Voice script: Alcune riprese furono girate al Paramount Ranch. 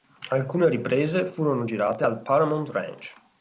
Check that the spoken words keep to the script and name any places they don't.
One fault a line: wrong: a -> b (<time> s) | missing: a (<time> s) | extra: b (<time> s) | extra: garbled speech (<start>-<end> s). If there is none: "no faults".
no faults